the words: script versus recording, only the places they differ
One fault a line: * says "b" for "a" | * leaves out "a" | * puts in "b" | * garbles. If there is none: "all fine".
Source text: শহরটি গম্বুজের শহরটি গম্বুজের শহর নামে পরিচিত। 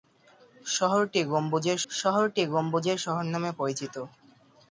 all fine